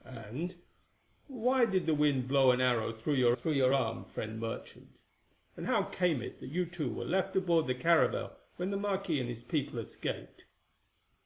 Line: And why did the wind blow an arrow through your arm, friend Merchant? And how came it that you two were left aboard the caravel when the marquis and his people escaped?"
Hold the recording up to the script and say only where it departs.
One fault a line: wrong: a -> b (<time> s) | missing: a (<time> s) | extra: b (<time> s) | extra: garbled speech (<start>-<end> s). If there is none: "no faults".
extra: through your (3.3 s)